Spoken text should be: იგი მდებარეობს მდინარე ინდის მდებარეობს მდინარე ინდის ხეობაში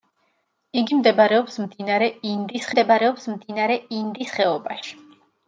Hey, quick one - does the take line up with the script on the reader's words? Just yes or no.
yes